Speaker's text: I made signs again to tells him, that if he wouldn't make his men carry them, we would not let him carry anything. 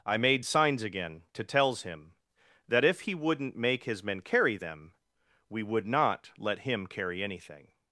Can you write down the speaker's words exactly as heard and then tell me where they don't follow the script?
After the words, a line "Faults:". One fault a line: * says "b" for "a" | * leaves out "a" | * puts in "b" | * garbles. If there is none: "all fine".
I made signs again to tells him, that if he wouldn't make his men carry them, we would not let him carry anything.
Faults:
all fine